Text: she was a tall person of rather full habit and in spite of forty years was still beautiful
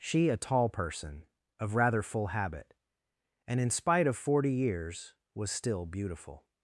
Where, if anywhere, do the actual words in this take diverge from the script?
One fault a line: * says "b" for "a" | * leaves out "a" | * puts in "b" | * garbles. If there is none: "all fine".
* leaves out "was"